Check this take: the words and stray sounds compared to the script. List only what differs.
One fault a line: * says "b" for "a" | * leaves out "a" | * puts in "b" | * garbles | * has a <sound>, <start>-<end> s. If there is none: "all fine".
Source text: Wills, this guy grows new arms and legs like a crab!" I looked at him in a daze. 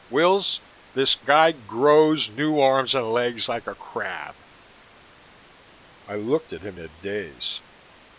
* leaves out "in"